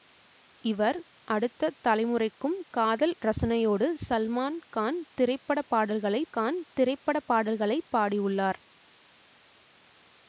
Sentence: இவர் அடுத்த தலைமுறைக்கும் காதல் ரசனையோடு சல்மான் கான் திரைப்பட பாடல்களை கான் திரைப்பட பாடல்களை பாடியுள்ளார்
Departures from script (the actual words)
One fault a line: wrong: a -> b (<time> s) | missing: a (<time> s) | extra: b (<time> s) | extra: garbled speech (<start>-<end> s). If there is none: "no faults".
no faults